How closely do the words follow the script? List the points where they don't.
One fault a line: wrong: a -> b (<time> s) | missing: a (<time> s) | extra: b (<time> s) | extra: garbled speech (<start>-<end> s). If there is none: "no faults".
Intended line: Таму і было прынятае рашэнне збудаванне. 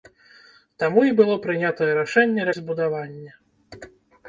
no faults